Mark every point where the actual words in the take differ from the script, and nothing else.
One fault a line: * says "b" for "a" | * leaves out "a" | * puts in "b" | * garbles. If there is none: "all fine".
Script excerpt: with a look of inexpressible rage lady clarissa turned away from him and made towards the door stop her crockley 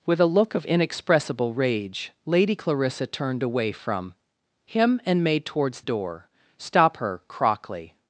* leaves out "the"